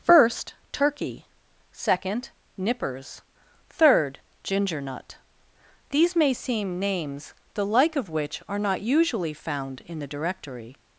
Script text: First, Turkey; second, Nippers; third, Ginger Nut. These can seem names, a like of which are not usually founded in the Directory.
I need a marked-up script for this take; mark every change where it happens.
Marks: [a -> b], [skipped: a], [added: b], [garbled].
First, Turkey; second, Nippers; third, Ginger Nut. These [can -> may] seem names, [a -> the] like of which are not usually [founded -> found] in the Directory.